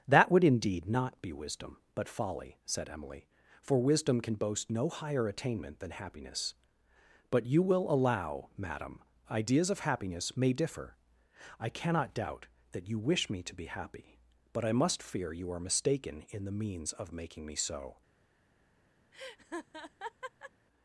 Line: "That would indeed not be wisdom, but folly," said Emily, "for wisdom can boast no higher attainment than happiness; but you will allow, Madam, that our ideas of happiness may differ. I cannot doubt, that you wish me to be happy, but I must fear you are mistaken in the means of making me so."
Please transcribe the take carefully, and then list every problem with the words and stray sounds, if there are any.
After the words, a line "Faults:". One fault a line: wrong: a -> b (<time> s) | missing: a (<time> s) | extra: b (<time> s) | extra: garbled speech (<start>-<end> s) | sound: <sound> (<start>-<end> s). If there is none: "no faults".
"That would indeed not be wisdom, but folly," said Emily, "for wisdom can boast no higher attainment than happiness; but you will allow, Madam, ideas of happiness may differ. I cannot doubt, that you wish me to be happy, but I must fear you are mistaken in the means of making me so."
Faults:
missing: that our (9.0 s)
sound: laugh (19.1-20.5 s)